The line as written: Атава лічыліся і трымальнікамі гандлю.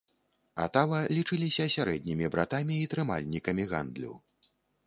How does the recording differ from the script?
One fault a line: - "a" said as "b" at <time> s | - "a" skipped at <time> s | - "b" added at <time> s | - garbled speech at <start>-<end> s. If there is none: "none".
- "сярэднімі братамі" added at 1.8 s